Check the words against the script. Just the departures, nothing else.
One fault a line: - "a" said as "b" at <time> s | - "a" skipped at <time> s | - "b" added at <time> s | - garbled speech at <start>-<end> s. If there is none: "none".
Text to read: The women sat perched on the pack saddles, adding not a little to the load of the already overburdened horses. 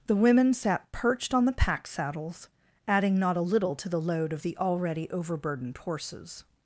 none